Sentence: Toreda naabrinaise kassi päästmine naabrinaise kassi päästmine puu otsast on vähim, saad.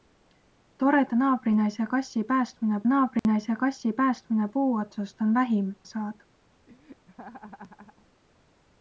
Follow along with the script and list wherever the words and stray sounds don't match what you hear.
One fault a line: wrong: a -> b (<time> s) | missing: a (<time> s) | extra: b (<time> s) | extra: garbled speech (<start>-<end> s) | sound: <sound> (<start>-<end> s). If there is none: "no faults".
sound: dropout (3.2-3.2 s)
sound: laugh (6.7-8.1 s)